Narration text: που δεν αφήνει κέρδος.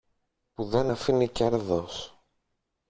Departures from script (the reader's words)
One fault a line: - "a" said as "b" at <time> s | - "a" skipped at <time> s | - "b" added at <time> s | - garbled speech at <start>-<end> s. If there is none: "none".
none